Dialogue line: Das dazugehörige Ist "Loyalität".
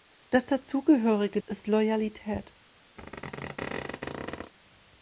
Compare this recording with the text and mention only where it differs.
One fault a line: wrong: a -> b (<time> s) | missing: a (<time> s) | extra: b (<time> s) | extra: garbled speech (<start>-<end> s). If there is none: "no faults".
no faults